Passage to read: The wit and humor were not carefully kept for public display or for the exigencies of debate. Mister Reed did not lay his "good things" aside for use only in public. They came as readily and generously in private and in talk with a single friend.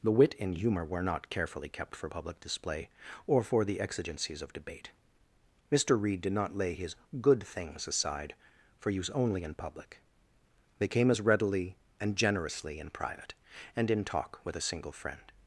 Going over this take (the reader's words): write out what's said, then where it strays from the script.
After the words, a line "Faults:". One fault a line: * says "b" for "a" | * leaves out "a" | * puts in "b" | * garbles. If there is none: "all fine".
The wit and humor were not carefully kept for public display or for the exigencies of debate. Mister Reed did not lay his "good things" aside for use only in public. They came as readily and generously in private and in talk with a single friend.
Faults:
all fine